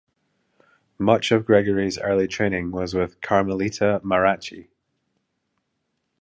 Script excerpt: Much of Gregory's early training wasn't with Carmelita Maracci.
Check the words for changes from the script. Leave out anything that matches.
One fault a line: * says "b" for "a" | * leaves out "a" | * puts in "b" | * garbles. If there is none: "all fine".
* says "was" for "wasn't"